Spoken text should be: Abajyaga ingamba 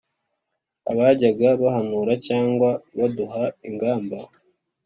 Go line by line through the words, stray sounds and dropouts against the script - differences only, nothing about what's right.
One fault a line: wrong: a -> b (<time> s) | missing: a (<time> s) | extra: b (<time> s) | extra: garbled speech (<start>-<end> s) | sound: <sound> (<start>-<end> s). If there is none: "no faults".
extra: bahanura Cyangwa baduha (1.6 s)